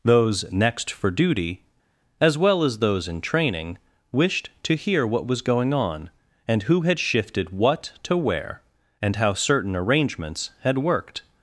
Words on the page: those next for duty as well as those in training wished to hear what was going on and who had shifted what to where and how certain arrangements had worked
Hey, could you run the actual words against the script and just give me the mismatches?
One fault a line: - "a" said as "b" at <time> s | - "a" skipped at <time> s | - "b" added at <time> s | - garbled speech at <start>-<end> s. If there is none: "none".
none